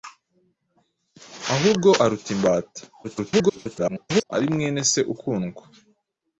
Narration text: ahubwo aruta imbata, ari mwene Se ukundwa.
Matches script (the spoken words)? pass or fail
fail